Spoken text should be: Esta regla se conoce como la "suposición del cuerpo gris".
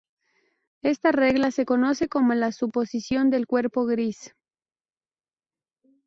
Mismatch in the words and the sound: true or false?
false